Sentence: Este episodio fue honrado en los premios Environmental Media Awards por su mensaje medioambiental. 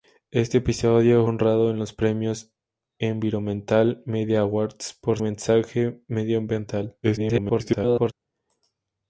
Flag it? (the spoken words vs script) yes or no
yes